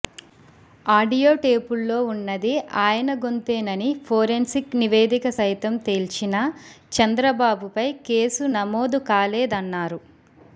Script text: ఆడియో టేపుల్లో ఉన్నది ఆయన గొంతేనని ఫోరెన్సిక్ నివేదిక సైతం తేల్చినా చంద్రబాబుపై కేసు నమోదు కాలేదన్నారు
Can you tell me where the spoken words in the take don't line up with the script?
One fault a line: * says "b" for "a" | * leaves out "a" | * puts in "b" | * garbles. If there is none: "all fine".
all fine